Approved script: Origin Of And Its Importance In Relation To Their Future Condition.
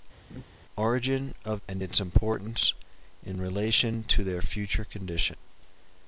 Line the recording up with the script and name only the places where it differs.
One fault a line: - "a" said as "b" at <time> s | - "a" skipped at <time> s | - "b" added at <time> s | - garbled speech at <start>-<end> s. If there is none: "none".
none